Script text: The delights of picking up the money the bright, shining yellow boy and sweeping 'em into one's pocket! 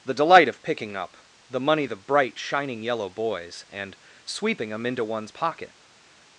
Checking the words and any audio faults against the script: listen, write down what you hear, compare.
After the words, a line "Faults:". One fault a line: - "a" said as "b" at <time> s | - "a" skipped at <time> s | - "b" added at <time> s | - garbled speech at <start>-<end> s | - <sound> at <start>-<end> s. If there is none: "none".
The delight of picking up the money the bright, shining yellow boys and sweeping 'em into one's pocket!
Faults:
- "delights" said as "delight" at 0.1 s
- "boy" said as "boys" at 3.1 s